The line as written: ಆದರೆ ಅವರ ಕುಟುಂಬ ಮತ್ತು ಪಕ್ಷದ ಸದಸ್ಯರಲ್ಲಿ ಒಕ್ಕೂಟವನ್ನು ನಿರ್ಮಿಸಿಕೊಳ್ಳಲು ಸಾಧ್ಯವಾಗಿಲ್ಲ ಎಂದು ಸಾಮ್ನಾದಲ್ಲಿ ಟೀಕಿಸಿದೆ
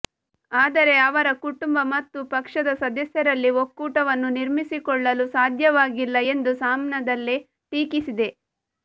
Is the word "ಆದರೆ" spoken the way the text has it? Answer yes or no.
yes